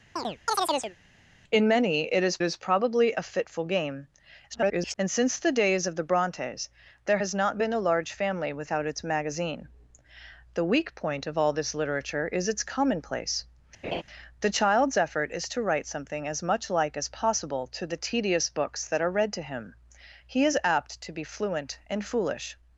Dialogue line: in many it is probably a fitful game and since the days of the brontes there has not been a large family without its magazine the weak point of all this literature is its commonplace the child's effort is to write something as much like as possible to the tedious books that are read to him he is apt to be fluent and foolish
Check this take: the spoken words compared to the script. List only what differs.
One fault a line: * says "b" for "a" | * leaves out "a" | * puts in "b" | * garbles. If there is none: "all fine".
* puts in "is"
* garbles